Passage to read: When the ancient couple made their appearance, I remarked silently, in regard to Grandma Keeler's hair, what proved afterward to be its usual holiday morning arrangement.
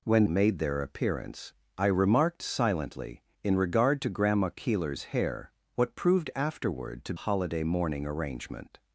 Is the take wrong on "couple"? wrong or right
wrong